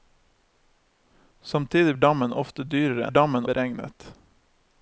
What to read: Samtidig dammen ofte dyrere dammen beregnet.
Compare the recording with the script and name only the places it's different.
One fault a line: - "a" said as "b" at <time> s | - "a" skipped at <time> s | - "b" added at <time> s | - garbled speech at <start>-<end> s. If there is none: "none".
none